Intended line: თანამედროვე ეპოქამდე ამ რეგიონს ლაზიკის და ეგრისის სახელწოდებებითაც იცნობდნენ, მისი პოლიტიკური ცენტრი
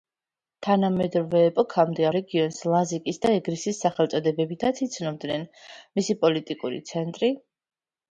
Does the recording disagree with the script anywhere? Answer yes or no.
yes